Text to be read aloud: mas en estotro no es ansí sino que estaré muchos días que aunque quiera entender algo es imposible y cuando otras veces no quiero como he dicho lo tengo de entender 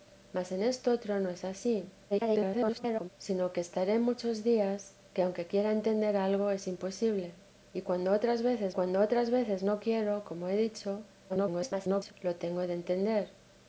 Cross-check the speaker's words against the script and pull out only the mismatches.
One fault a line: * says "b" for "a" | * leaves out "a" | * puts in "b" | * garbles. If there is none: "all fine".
* garbles
* puts in "cuando otras veces"
* garbles